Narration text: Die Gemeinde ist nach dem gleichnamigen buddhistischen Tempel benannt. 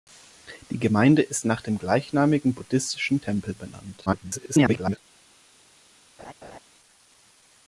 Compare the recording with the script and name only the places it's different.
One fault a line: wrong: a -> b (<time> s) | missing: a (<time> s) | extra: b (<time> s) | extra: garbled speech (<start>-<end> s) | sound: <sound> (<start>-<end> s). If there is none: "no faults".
extra: garbled speech (4.1-5.0 s)
sound: laugh (6.2-6.6 s)